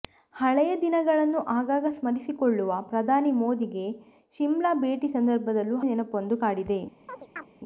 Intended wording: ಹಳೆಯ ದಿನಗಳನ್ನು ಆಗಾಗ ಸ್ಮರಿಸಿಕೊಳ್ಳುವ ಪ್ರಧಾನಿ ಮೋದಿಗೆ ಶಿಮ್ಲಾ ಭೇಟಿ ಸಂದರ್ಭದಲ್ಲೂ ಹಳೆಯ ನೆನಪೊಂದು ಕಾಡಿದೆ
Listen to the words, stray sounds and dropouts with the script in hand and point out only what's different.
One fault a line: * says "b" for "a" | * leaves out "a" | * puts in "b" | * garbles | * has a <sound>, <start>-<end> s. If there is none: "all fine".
* leaves out "ಹಳೆಯ"
* has a chirp, 7.1-7.5 s